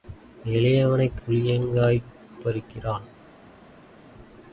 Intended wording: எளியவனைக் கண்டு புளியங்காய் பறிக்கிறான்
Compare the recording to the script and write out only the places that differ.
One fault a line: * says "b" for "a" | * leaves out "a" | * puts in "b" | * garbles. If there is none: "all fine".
* leaves out "கண்டு"